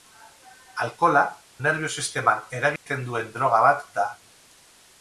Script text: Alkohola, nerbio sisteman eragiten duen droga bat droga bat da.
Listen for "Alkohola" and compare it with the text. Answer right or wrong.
right